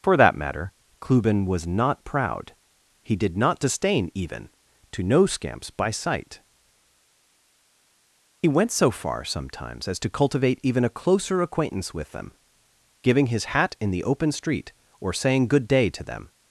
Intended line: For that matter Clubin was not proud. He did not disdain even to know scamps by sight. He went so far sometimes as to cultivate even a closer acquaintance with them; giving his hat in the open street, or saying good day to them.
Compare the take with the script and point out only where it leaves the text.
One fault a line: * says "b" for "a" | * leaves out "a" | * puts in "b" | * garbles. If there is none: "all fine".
all fine